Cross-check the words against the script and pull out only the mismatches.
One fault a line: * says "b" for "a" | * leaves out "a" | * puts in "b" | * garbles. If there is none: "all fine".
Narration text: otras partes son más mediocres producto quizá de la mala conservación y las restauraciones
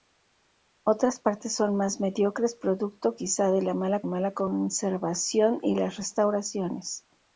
* puts in "mala"